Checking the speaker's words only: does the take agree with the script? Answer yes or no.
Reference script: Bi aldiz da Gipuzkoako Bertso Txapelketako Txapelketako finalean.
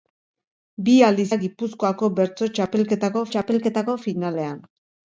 yes